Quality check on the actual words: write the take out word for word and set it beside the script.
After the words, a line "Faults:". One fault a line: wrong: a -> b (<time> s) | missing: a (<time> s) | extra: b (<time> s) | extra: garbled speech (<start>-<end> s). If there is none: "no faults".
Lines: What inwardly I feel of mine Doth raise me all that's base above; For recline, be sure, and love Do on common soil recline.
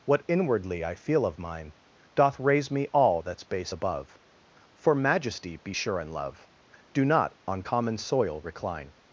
What inwardly I feel of mine Doth raise me all that's base above; For majesty, be sure, and love Do not on common soil recline.
Faults:
wrong: recline -> majesty (4.9 s)
extra: not (7.0 s)